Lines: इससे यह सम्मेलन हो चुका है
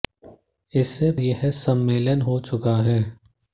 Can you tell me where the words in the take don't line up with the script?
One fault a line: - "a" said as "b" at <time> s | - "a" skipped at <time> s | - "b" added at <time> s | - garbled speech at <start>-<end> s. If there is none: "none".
none